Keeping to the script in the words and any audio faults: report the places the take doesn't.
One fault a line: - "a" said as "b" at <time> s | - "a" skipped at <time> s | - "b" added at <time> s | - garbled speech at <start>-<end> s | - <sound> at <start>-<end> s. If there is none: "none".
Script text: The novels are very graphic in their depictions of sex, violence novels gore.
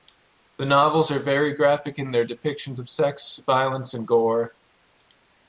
- "novels" said as "and" at 3.9 s